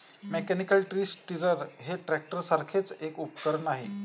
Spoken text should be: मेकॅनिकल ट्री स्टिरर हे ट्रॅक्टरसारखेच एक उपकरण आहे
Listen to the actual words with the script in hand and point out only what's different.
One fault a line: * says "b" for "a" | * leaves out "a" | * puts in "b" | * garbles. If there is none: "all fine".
all fine